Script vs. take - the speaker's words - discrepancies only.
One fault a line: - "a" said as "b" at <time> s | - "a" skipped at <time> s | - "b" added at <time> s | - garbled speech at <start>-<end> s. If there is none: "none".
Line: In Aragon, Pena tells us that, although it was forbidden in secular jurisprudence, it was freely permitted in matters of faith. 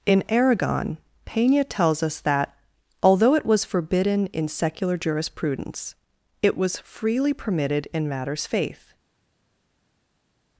- "of" skipped at 8.5 s